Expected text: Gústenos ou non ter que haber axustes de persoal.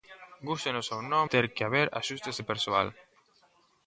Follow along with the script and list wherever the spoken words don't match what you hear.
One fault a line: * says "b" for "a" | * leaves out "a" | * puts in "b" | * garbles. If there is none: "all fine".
all fine